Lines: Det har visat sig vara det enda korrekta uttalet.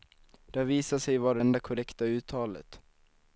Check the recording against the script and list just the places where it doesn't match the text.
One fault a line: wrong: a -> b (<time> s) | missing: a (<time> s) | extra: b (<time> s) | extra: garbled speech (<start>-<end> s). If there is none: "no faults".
missing: det (1.4 s)